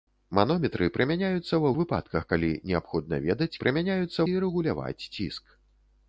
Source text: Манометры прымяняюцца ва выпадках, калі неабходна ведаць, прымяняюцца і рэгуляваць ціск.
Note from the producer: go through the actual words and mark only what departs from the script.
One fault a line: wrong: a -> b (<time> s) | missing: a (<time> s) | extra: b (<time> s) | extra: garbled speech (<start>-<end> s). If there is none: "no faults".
no faults